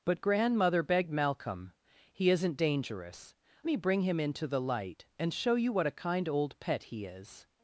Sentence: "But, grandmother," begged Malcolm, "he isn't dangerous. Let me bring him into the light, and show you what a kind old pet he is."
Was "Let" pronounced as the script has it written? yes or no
no